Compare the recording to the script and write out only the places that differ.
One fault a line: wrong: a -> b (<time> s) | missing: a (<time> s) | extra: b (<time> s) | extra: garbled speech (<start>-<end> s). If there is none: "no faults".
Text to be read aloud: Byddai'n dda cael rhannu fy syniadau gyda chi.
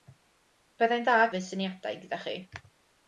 missing: cael rhannu (1.2 s)